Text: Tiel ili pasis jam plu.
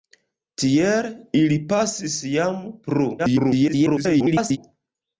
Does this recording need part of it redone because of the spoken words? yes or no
yes